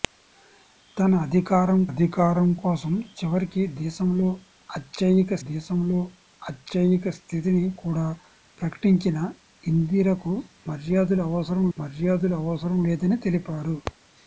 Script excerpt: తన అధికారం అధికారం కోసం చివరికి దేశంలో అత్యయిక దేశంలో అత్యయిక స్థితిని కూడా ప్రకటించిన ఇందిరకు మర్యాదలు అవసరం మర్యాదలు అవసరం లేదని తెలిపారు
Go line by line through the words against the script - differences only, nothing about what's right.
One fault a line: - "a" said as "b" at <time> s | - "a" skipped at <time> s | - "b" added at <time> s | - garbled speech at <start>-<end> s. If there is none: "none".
none